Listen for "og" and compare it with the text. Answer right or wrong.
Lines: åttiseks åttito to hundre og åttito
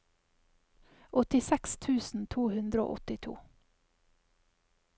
right